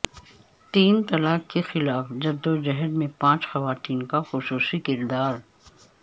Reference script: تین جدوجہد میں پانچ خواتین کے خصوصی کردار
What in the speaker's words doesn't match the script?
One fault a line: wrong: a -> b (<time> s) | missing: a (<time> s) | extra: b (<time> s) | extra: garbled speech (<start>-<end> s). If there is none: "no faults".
extra: طلاق کے خلاف (1.0 s)
wrong: کے -> کا (4.0 s)